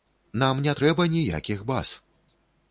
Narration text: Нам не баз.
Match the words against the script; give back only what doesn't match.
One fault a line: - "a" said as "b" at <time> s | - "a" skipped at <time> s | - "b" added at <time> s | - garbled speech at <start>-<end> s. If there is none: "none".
- "трэба ніякіх" added at 0.8 s